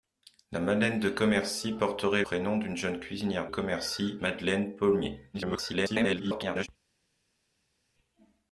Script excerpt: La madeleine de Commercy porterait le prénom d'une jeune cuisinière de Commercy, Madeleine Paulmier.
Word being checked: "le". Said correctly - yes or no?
no